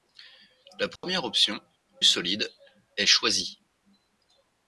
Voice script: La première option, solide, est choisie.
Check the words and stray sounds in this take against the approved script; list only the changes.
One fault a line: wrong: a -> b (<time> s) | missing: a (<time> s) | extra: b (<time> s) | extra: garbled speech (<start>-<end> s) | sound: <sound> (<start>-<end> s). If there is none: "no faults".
sound: dropout (1.0-1.0 s)